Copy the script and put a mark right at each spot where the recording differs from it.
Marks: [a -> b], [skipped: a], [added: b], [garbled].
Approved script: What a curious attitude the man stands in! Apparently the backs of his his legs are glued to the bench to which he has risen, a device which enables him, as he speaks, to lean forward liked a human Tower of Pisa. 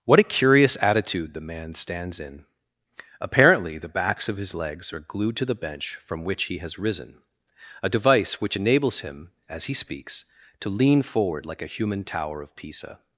What a curious attitude the man stands in! Apparently the backs of his [skipped: his] legs are glued to the bench [to -> from] which he has risen, a device which enables him, as he speaks, to lean forward [liked -> like] a human Tower of Pisa.